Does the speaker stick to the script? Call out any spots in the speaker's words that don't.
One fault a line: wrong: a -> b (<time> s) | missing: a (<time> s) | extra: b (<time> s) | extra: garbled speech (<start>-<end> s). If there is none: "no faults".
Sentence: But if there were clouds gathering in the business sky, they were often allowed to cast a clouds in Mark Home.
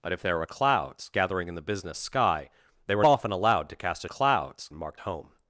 no faults